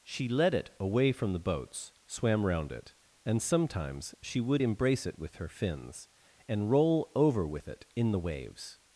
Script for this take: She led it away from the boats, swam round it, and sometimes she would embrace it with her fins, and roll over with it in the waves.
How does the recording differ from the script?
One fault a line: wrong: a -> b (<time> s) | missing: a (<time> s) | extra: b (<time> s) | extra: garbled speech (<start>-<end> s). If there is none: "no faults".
no faults